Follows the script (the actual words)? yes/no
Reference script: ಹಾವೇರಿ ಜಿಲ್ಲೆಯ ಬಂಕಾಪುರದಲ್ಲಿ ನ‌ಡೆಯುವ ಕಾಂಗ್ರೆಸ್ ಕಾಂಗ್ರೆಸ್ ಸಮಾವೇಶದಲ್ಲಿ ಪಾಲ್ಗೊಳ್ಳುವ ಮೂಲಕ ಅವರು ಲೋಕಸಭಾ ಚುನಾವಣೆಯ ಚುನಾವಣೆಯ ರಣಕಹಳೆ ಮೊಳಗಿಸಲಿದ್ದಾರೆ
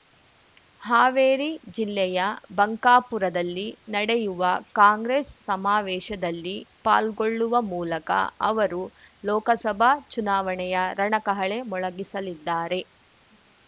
no